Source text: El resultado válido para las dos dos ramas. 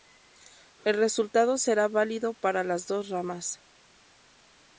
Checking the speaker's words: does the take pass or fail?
fail